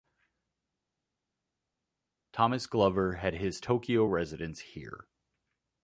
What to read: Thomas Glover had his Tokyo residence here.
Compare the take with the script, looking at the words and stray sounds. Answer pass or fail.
pass